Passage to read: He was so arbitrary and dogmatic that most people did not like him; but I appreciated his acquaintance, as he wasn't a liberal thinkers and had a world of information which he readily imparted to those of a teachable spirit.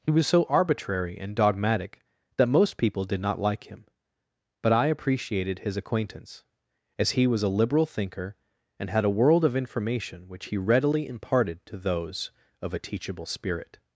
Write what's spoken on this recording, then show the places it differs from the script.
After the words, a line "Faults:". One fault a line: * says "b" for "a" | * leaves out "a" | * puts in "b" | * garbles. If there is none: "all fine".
He was so arbitrary and dogmatic that most people did not like him; but I appreciated his acquaintance, as he was a liberal thinker and had a world of information which he readily imparted to those of a teachable spirit.
Faults:
* says "was" for "wasn't"
* says "thinker" for "thinkers"